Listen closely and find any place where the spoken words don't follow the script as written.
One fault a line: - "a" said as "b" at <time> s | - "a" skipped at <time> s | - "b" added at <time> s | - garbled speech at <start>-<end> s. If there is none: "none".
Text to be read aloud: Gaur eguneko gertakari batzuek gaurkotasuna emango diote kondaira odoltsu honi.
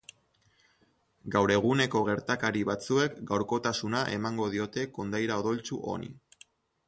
none